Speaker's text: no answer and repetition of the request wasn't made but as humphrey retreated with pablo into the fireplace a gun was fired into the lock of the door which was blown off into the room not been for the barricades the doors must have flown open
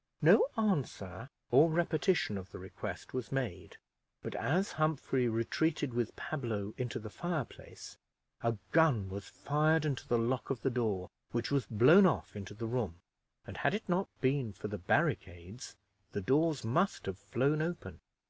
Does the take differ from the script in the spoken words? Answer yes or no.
yes